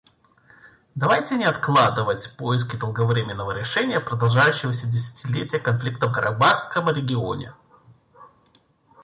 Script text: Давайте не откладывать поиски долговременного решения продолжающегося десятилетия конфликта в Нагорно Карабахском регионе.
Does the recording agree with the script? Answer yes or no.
no